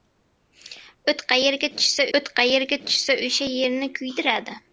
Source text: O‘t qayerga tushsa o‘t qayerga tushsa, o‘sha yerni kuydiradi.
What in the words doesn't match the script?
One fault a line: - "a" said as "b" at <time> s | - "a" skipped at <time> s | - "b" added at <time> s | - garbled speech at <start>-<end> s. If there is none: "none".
none